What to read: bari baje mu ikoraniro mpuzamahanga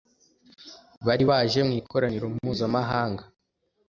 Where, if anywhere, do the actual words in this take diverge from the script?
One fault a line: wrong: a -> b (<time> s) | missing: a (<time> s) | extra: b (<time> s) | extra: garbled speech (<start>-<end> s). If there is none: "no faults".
no faults